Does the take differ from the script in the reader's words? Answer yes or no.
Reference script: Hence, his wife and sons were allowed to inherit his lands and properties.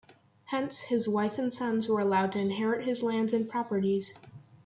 no